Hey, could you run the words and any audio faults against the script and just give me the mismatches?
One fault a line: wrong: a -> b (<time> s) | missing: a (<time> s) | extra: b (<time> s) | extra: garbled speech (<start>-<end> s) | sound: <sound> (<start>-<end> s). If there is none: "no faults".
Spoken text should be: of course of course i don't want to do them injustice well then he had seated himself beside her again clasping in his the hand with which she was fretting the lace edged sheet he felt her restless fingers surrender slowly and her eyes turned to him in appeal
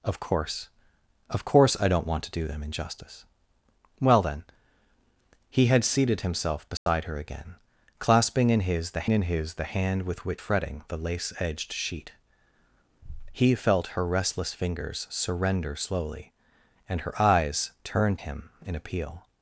sound: dropout (6.8-6.9 s)
extra: in his the (9.1 s)
missing: she was (10.4 s)
missing: to (18.2 s)